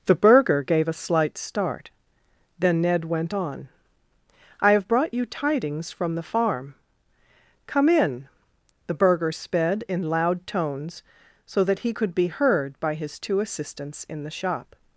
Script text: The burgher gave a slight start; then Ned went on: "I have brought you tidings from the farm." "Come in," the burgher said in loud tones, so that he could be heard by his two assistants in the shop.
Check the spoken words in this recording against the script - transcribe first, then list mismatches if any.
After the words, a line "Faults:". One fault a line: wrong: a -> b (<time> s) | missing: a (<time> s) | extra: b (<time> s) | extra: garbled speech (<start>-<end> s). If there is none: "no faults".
The burgher gave a slight start; then Ned went on: "I have brought you tidings from the farm." "Come in," the burgher sped in loud tones, so that he could be heard by his two assistants in the shop.
Faults:
wrong: said -> sped (9.3 s)